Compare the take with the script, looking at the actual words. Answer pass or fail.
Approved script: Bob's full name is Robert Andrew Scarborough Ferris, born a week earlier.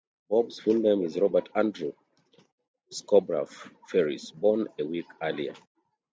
pass